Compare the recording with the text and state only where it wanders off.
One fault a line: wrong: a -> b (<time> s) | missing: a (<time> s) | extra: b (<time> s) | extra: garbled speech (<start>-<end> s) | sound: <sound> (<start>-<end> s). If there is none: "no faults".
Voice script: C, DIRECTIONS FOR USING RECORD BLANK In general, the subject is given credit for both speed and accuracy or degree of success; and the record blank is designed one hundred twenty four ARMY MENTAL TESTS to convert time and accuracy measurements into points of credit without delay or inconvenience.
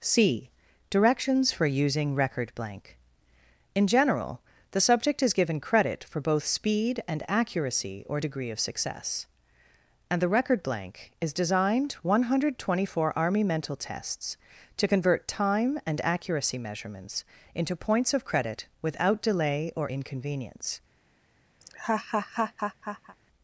sound: laugh (21.6-23.2 s)